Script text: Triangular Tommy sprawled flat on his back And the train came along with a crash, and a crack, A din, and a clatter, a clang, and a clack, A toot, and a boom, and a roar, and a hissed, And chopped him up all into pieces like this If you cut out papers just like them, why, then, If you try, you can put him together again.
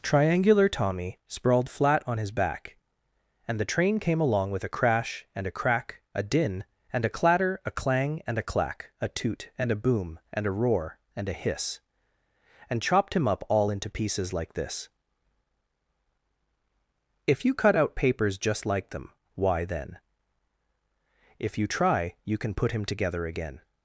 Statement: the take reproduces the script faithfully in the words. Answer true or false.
false